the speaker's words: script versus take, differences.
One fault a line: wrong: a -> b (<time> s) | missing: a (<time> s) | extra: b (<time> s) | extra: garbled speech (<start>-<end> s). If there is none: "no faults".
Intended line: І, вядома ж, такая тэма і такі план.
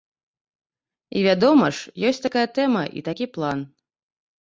extra: ёсць (2.1 s)